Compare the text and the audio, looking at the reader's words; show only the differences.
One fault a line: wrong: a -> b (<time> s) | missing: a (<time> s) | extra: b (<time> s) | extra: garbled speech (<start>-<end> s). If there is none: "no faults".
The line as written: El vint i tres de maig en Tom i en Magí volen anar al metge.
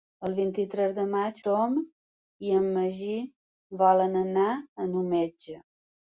missing: en (1.4 s)